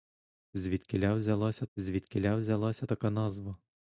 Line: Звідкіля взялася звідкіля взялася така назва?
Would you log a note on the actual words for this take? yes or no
no